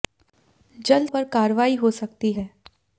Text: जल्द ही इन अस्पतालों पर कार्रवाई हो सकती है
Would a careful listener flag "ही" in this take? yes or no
yes